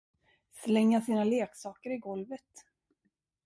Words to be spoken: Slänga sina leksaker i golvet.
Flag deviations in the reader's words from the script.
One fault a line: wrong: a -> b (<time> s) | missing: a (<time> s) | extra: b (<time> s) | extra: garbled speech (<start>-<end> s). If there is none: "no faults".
no faults